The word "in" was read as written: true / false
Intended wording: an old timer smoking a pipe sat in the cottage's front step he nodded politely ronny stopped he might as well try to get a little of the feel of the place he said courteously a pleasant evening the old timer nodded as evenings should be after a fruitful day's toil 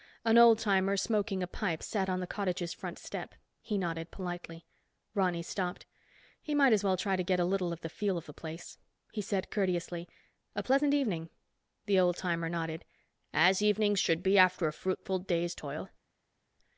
false